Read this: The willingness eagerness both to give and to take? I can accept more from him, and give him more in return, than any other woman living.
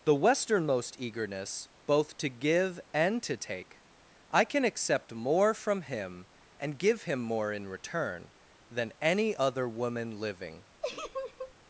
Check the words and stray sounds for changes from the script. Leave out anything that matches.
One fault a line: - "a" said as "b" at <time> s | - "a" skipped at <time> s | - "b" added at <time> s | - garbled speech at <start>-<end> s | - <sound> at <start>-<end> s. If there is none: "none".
- "willingness" said as "westernmost" at 0.1 s
- laugh at 10.8-11.5 s